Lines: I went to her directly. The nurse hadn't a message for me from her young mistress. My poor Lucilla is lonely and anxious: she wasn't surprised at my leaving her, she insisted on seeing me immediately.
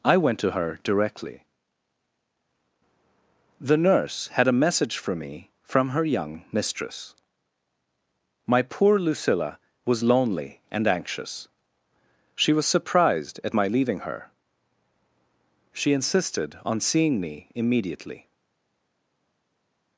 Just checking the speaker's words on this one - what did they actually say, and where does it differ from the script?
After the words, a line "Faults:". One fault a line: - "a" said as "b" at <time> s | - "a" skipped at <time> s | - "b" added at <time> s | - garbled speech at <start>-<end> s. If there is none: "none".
I went to her directly. The nurse had a message for me from her young mistress. My poor Lucilla was lonely and anxious: she was surprised at my leaving her, she insisted on seeing me immediately.
Faults:
- "hadn't" said as "had" at 4.3 s
- "is" said as "was" at 9.8 s
- "wasn't" said as "was" at 12.5 s